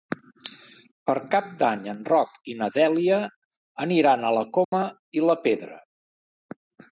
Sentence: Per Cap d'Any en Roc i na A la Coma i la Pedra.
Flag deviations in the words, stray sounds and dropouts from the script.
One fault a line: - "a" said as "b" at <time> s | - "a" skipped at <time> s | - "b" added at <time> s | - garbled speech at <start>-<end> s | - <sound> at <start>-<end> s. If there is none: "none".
- "Dèlia aniran" added at 2.8 s
- dropout at 4.6-4.7 s